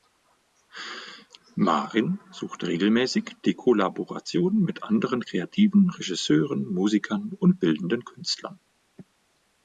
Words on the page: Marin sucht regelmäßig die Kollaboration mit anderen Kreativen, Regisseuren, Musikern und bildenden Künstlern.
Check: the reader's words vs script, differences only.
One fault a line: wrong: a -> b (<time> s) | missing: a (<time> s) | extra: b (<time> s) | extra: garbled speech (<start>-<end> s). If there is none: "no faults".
no faults